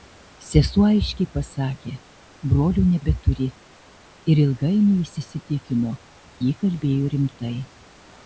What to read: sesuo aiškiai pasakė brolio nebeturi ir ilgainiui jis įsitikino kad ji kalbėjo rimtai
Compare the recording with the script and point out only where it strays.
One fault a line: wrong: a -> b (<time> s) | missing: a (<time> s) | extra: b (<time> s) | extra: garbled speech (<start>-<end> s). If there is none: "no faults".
missing: kad (5.9 s)